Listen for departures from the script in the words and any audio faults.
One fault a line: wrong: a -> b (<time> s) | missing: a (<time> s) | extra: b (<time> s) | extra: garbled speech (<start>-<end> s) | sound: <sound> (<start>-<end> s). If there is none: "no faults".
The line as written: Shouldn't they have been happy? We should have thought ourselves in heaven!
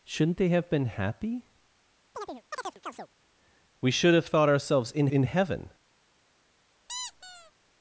sound: chirp (2.1-3.1 s)
extra: in (5.1 s)
sound: squeak (6.9-7.5 s)